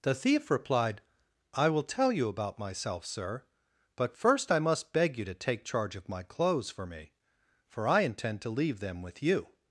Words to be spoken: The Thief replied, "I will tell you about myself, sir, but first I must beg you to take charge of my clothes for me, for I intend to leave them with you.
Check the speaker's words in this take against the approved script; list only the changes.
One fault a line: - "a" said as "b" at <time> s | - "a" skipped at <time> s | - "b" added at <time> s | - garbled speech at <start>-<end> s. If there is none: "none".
none